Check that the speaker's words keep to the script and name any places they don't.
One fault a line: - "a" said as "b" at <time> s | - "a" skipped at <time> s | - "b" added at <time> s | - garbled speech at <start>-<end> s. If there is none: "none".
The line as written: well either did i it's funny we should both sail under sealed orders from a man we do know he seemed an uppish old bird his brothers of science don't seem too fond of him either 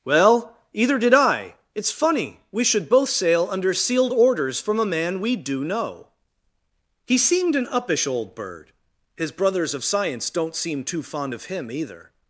none